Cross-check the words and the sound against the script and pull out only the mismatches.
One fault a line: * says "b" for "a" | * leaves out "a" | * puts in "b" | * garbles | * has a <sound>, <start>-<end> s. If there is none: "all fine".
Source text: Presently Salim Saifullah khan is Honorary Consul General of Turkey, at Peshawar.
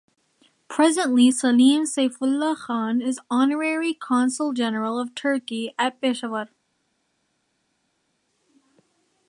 all fine